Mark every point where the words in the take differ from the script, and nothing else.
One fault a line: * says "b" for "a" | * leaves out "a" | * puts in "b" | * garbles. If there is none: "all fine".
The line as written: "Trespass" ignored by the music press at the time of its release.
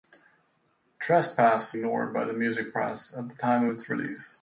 all fine